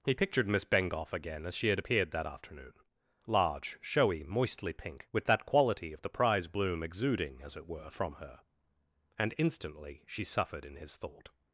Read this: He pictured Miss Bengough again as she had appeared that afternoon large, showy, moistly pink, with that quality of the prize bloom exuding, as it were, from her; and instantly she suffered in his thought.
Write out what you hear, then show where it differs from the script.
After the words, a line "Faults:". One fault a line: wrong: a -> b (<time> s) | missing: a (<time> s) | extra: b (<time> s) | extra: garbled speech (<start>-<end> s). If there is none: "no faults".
He pictured Miss Bengough again as she had appeared that afternoon large, showy, moistly pink, with that quality of the prize bloom exuding, as it were, from her; and instantly she suffered in his thought.
Faults:
no faults